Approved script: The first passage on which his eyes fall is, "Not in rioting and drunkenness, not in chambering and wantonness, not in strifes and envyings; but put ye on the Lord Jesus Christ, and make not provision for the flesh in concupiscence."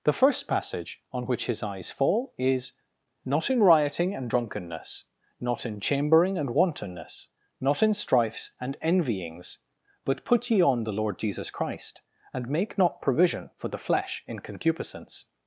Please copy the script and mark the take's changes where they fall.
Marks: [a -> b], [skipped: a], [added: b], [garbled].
The first passage on which his eyes fall is, "Not in rioting and drunkenness, not in chambering and wantonness, not in strifes and envyings; but put ye on the Lord Jesus Christ, and make not provision for the flesh in concupiscence."